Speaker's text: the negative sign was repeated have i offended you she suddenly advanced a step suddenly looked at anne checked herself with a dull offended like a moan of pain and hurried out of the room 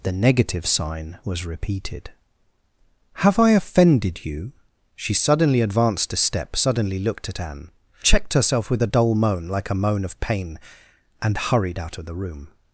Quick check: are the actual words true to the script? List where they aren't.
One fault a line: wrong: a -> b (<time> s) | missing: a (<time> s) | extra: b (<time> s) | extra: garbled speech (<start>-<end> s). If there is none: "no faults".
wrong: offended -> moan (9.1 s)